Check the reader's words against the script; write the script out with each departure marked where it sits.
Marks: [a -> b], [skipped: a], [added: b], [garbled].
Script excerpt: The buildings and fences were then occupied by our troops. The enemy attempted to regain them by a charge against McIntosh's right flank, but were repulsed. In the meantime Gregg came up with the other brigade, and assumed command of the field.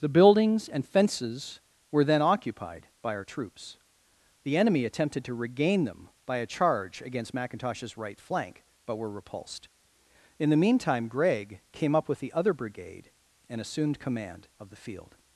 The buildings and fences were then occupied by our troops. The enemy attempted to regain them by a charge against McIntosh's right flank, but were repulsed. In the meantime Gregg came up with the other brigade, and assumed command of the field.